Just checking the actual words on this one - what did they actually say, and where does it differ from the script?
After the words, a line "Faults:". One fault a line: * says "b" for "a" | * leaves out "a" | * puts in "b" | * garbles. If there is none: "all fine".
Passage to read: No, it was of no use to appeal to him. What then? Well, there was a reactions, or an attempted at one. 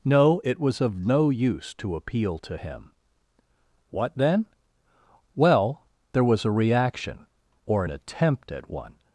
No, it was of no use to appeal to him. What then? Well, there was a reaction, or an attempt at one.
Faults:
* says "reaction" for "reactions"
* says "attempt" for "attempted"